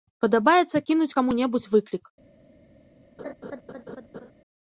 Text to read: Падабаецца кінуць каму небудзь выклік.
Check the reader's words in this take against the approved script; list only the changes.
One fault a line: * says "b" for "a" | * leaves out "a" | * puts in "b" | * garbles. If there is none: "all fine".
all fine